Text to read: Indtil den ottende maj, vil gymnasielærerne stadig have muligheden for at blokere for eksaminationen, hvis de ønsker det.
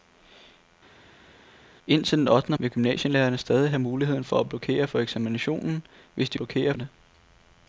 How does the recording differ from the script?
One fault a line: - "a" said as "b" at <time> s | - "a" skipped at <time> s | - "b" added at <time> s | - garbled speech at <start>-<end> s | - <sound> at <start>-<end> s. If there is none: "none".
- "maj" skipped at 2.6 s
- "ønsker" said as "blokere" at 6.4 s